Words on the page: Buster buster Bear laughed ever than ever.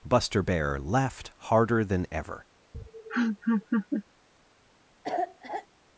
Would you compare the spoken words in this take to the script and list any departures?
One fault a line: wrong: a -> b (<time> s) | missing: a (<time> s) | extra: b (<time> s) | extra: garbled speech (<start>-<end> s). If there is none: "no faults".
missing: buster (0.4 s)
wrong: ever -> harder (1.4 s)